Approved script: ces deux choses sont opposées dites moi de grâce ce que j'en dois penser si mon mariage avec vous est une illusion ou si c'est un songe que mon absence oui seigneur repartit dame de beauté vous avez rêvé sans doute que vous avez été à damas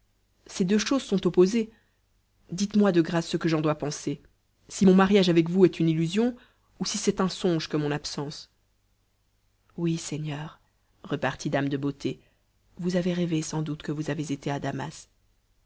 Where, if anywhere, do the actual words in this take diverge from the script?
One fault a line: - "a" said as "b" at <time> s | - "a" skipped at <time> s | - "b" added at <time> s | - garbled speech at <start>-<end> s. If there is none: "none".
none